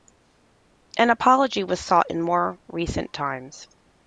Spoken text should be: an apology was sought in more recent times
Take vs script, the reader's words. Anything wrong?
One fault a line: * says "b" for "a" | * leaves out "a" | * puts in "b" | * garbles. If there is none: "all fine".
all fine